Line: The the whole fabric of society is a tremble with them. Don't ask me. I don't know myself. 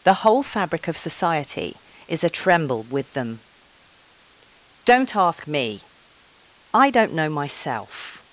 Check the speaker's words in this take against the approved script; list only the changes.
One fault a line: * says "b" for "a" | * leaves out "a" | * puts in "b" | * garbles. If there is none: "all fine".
* leaves out "the"